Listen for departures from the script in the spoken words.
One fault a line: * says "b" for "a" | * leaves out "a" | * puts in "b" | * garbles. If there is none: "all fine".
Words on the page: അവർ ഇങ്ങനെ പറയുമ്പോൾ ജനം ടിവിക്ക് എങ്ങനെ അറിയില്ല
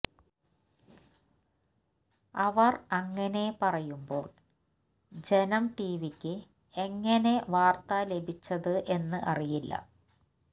* says "അങ്ങനെ" for "ഇങ്ങനെ"
* puts in "വാർത്ത ലഭിച്ചത് എന്ന്"